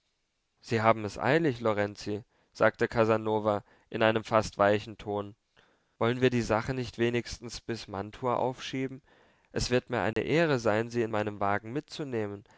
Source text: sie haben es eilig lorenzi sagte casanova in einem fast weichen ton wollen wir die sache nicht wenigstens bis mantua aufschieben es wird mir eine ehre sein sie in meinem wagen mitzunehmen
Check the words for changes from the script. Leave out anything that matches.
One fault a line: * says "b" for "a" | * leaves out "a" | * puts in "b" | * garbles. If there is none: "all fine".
all fine